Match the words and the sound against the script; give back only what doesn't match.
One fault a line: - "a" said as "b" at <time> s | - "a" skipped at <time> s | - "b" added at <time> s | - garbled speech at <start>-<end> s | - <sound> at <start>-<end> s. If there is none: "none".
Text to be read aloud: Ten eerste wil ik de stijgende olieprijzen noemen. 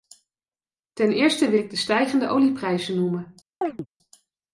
- chirp at 3.6-3.9 s